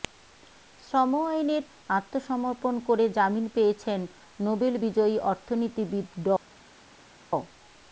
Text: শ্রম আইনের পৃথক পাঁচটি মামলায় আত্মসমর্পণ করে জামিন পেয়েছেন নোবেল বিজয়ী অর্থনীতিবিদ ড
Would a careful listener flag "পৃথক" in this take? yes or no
yes